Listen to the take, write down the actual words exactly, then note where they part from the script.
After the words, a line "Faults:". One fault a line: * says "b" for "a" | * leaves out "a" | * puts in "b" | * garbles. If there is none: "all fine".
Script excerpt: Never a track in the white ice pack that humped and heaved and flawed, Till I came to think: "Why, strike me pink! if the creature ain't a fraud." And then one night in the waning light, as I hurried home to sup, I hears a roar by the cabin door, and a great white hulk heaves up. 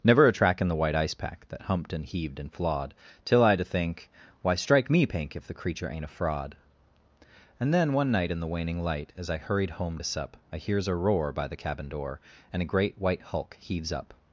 Never a track in the white ice pack that humped and heaved and flawed, Till I to think: "Why, strike me pink! if the creature ain't a fraud." And then one night in the waning light, as I hurried home to sup, I hears a roar by the cabin door, and a great white hulk heaves up.
Faults:
* leaves out "came"